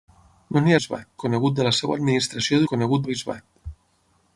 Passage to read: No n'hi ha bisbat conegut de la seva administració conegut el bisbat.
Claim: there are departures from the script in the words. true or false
false